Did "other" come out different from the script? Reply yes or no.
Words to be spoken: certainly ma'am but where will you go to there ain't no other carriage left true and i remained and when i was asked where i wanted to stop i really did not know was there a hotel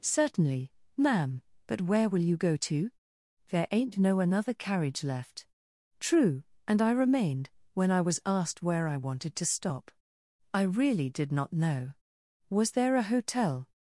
yes